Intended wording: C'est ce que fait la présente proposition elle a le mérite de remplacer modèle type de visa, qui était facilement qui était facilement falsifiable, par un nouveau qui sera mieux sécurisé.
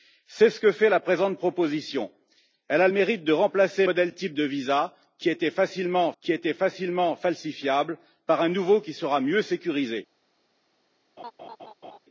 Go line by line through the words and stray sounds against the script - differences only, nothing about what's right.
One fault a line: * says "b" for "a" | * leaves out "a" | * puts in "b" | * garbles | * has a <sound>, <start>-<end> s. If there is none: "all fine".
* has a laugh, 11.2-12.0 s